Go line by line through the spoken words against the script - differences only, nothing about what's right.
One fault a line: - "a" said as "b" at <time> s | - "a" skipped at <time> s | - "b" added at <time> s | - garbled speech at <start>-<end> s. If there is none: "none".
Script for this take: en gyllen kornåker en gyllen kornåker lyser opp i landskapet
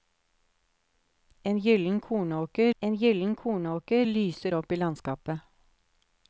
none